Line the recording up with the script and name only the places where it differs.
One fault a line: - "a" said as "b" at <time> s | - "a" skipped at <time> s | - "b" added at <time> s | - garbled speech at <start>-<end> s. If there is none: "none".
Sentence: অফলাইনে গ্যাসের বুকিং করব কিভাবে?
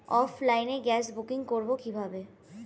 none